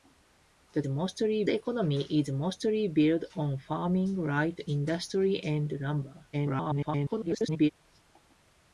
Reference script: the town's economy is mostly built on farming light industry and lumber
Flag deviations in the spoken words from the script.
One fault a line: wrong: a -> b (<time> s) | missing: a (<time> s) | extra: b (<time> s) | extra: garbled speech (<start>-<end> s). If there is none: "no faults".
wrong: town's -> mostly (0.8 s)
extra: garbled speech (6.3-7.7 s)